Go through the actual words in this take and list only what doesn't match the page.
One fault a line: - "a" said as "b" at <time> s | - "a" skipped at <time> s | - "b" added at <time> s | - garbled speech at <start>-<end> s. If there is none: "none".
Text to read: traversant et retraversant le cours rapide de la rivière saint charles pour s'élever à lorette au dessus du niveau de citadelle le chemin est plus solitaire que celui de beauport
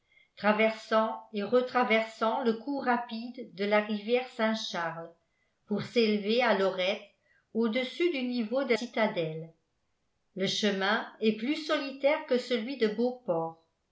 none